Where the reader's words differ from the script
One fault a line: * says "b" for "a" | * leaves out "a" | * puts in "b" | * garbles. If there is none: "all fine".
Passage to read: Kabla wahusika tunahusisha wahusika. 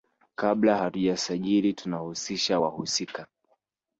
* says "hatujasajili" for "wahusika"